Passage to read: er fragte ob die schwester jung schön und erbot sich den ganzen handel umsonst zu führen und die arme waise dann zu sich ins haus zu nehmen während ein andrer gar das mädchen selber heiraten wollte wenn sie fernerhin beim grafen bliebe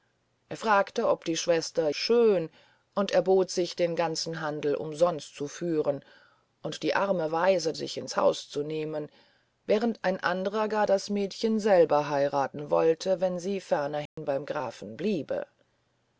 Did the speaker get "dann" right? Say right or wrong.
wrong